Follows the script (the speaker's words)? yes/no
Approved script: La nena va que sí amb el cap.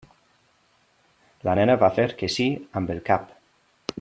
no